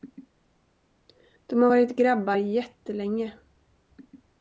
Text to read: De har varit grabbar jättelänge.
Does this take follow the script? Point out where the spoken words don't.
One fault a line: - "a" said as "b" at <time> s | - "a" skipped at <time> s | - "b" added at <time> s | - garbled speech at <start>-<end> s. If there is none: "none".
none